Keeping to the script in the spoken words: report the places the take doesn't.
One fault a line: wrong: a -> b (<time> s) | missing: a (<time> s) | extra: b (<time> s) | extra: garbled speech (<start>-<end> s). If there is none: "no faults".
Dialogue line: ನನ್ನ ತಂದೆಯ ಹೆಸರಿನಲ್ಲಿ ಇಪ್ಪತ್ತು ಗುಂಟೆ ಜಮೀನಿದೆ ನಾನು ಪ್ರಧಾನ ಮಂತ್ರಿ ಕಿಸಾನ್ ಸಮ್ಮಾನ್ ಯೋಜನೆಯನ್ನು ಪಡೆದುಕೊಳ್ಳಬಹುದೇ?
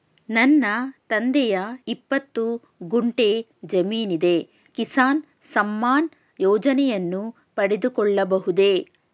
missing: ಹೆಸರಿನಲ್ಲಿ (1.6 s)
missing: ನಾನು ಪ್ರಧಾನ ಮಂತ್ರಿ (4.4 s)